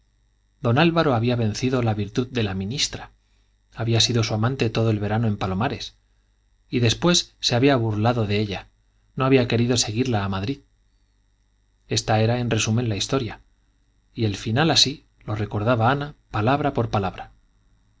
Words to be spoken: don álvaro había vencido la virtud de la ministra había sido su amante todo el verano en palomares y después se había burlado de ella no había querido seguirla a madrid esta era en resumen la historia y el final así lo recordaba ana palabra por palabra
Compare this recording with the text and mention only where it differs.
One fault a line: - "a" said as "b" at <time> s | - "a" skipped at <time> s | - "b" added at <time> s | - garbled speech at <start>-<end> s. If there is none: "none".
none